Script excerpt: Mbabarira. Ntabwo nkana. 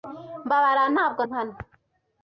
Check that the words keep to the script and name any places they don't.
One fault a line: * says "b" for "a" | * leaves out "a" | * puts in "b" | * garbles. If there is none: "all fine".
all fine